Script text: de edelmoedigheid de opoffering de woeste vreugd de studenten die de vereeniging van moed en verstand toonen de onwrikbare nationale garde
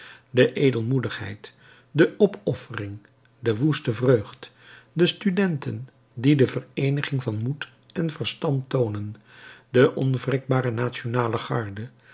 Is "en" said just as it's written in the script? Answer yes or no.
yes